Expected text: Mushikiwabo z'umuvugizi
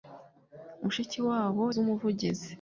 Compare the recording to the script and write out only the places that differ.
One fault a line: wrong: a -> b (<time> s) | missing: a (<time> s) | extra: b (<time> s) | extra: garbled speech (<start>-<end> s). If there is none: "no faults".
no faults